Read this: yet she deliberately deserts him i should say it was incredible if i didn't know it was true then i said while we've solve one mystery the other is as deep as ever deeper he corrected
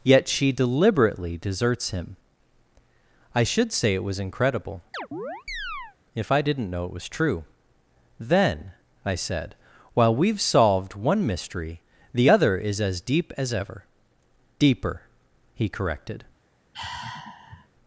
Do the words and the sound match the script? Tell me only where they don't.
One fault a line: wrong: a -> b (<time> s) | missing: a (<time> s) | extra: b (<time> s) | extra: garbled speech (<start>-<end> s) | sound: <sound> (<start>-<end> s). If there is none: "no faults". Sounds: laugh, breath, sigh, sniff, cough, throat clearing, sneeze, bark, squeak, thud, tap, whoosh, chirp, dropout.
sound: chirp (4.9-6.0 s)
wrong: solve -> solved (10.4 s)
sound: sigh (16.7-17.7 s)